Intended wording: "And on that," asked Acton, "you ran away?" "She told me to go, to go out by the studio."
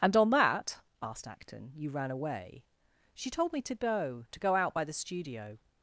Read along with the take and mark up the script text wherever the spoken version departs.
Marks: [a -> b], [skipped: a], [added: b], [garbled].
"And on that," asked Acton, "you ran away?" "She told me to go, to go out by the studio."